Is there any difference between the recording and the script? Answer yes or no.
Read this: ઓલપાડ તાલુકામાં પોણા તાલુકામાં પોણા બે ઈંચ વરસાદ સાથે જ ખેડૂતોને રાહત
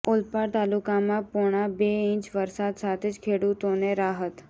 yes